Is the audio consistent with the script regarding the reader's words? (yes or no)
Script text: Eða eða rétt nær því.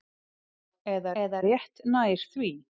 yes